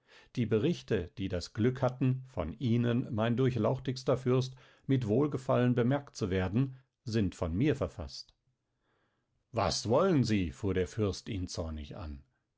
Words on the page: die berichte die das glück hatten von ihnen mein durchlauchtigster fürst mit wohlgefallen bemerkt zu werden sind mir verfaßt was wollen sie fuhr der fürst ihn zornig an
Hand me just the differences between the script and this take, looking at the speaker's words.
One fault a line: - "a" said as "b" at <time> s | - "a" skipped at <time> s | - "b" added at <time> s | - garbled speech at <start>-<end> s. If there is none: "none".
- "von" added at 7.3 s